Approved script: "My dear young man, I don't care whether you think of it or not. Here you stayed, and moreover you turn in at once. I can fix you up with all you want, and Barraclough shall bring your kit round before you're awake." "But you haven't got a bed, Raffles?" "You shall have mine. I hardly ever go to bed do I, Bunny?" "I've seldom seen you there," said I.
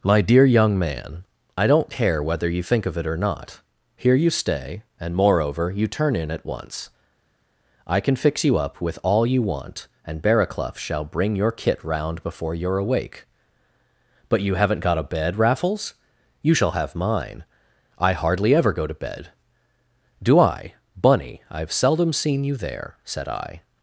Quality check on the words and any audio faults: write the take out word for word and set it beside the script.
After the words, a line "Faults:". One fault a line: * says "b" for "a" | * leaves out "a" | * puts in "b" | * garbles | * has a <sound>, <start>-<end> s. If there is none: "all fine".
"My dear young man, I don't care whether you think of it or not. Here you stay, and moreover you turn in at once. I can fix you up with all you want, and Barraclough shall bring your kit round before you're awake." "But you haven't got a bed, Raffles?" "You shall have mine. I hardly ever go to bed do I, Bunny?" "I've seldom seen you there," said I.
Faults:
* says "stay" for "stayed"